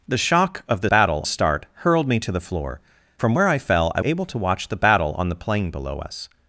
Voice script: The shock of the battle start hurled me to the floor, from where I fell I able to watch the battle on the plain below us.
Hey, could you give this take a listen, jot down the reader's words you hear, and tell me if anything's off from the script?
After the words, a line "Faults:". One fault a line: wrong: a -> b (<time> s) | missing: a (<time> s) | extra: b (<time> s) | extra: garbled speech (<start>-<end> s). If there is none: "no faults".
The shock of the battle start hurled me to the floor, from where I fell I able to watch the battle on the plain below us.
Faults:
no faults